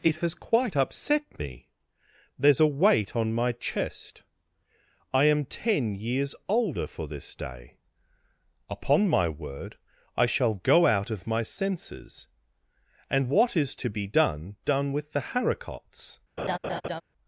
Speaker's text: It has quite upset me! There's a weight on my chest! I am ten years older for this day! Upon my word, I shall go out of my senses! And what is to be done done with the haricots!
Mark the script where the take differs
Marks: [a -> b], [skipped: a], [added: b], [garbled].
It has quite upset me! There's a weight on my chest! I am ten years older for this day! Upon my word, I shall go out of my senses! And what is to be done done with the haricots!